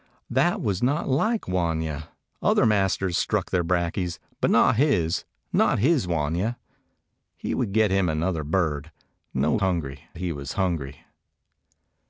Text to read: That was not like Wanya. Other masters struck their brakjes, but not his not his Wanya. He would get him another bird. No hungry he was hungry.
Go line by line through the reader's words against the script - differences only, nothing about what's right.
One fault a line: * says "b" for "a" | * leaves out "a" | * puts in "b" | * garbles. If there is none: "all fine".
all fine